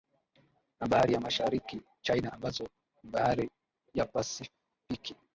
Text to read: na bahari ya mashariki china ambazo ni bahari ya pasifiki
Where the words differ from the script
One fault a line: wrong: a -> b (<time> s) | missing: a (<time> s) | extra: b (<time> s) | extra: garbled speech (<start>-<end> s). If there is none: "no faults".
no faults